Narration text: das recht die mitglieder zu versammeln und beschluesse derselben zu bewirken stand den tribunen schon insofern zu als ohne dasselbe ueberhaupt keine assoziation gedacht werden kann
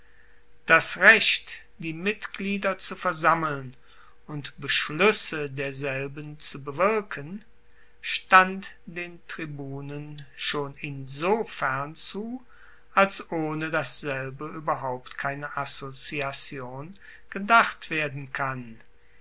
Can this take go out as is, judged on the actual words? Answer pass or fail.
pass